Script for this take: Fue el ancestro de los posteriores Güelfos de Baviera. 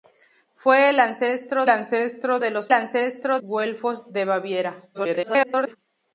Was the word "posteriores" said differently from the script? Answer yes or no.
yes